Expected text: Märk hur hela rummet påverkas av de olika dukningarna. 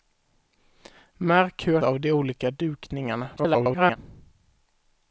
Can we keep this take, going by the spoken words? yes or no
no